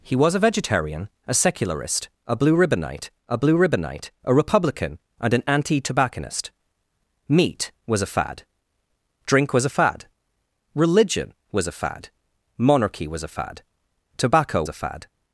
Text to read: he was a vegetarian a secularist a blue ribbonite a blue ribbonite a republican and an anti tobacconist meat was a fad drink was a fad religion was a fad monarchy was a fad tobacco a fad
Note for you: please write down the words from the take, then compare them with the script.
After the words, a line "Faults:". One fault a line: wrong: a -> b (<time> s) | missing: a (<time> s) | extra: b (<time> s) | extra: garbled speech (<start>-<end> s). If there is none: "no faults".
he was a vegetarian a secularist a blue ribbonite a blue ribbonite a republican and an anti tobacconist meat was a fad drink was a fad religion was a fad monarchy was a fad tobacco a fad
Faults:
no faults